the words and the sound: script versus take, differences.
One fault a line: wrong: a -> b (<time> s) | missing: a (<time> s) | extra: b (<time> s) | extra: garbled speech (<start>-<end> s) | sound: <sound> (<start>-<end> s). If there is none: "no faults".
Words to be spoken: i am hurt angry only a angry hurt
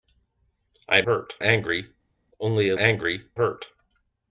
no faults